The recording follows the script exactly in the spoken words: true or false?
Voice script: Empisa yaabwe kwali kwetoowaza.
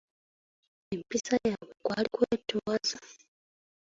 true